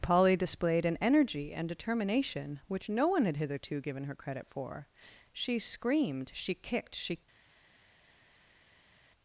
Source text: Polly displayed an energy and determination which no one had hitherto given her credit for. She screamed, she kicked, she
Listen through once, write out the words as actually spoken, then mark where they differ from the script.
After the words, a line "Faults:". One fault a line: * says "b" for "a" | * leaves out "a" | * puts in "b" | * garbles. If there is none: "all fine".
Polly displayed an energy and determination which no one had hitherto given her credit for. She screamed, she kicked, she
Faults:
all fine